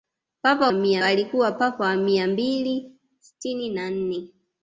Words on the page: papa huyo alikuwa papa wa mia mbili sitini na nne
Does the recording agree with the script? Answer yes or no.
no